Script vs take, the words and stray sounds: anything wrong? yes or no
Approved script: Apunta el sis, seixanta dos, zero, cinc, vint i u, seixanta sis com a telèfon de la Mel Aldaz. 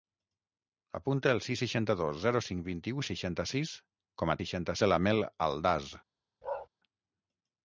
yes